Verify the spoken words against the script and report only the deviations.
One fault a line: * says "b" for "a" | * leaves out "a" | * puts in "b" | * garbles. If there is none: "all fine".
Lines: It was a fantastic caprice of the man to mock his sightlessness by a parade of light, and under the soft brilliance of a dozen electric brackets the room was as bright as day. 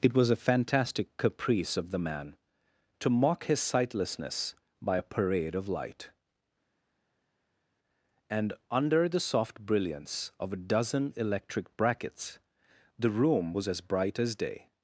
all fine